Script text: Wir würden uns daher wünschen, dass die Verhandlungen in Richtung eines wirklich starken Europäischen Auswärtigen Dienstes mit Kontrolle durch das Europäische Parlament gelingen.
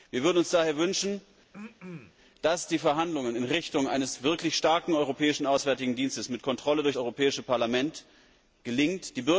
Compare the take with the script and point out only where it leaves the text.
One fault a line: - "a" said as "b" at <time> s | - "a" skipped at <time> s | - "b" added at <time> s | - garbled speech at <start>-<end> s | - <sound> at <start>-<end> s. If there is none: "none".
- throat clearing at 1.5-2.1 s
- "das" skipped at 7.0 s